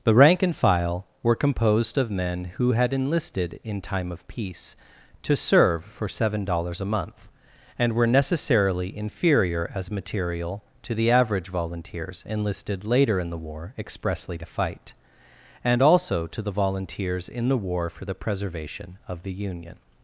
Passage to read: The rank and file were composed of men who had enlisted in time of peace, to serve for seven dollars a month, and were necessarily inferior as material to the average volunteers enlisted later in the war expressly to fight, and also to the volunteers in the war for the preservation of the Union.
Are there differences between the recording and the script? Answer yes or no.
no